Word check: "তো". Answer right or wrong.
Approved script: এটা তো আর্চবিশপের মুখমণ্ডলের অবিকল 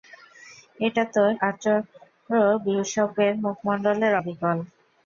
right